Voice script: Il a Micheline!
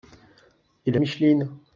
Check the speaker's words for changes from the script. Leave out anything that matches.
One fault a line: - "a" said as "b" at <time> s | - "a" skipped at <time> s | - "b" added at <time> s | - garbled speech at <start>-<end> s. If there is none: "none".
none